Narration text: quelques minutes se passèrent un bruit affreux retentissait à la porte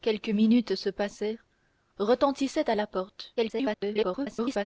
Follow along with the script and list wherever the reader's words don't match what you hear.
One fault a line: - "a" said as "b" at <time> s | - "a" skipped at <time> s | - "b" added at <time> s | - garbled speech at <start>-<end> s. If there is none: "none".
- "un bruit affreux" skipped at 1.4 s
- garbled speech at 3.4-4.7 s